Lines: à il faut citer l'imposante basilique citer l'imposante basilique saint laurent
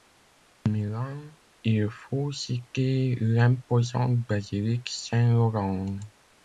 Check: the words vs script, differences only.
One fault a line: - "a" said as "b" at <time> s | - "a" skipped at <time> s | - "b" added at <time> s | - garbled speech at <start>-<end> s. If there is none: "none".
- "milan" added at 0.7 s
- "citer l'imposante basilique" skipped at 4.9 s